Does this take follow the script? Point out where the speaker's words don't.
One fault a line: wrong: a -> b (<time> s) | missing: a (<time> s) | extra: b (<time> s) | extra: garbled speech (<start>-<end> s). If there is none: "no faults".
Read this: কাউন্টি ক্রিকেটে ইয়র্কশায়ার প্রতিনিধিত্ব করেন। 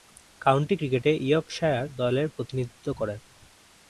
extra: দলের (2.0 s)